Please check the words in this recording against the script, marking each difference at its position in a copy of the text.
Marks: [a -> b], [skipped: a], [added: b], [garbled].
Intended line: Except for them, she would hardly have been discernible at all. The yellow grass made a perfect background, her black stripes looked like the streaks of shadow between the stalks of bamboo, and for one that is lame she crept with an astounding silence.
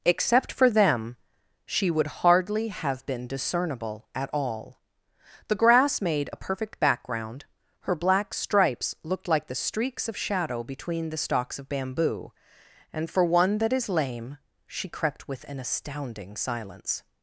Except for them, she would hardly have been discernible at all. The [skipped: yellow] grass made a perfect background, her black stripes looked like the streaks of shadow between the stalks of bamboo, and for one that is lame she crept with an astounding silence.